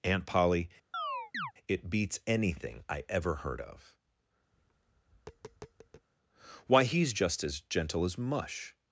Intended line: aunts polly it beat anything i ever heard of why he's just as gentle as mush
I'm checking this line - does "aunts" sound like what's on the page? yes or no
no